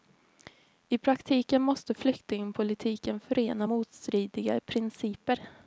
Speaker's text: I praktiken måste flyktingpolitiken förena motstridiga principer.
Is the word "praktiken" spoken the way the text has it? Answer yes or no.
yes